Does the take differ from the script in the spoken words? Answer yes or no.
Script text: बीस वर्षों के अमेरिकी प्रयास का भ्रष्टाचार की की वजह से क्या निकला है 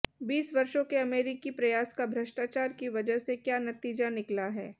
yes